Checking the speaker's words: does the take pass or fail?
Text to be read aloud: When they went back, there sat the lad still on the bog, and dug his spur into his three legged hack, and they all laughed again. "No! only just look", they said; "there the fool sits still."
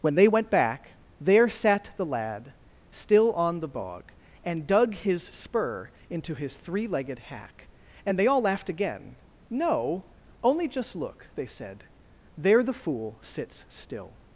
pass